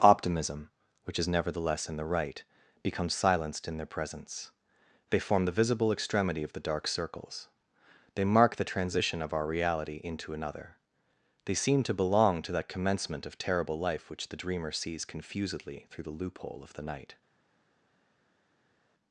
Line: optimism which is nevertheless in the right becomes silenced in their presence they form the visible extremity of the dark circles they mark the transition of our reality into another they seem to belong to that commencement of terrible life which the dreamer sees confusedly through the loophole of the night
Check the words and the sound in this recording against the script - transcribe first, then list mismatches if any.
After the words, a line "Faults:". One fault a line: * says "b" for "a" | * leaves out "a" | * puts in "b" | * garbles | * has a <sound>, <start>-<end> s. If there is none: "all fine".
optimism which is nevertheless in the right becomes silenced in their presence they form the visible extremity of the dark circles they mark the transition of our reality into another they seem to belong to that commencement of terrible life which the dreamer sees confusedly through the loophole of the night
Faults:
all fine